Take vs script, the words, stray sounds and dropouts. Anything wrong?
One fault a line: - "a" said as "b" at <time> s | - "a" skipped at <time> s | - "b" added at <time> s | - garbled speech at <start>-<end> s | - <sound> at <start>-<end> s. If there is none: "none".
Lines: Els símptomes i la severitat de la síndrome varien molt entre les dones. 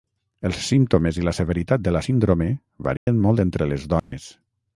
- dropout at 3.0-3.1 s
- dropout at 4.0-4.1 s